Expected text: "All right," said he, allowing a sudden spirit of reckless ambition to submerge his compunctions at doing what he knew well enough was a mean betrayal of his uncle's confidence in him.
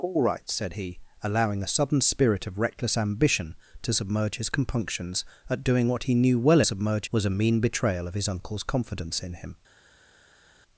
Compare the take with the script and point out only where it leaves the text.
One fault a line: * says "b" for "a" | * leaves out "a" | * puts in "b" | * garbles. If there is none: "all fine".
* says "submerge" for "enough"